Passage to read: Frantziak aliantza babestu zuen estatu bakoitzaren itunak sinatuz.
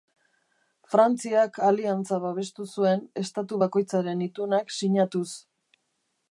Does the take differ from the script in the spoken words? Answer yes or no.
no